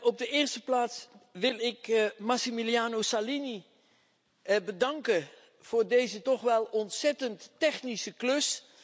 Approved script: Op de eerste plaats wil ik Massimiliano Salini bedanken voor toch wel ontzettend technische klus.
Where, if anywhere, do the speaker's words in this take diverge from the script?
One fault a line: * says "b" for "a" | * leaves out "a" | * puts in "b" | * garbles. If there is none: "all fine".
* puts in "deze"